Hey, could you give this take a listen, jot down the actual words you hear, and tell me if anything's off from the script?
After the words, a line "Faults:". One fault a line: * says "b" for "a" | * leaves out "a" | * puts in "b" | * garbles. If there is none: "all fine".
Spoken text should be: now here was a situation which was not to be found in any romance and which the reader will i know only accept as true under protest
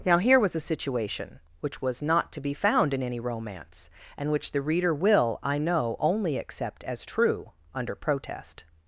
now here was a situation which was not to be found in any romance and which the reader will i know only accept as true under protest
Faults:
all fine